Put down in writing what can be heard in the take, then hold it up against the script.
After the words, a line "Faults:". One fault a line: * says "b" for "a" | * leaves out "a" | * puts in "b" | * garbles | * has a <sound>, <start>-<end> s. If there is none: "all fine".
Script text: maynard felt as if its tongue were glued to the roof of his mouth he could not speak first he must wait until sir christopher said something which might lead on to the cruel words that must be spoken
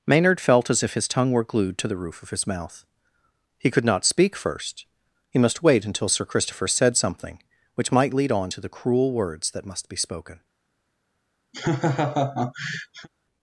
maynard felt as if his tongue were glued to the roof of his mouth he could not speak first he must wait until sir christopher said something which might lead on to the cruel words that must be spoken
Faults:
* says "his" for "its"
* has a laugh, 11.5-13.1 s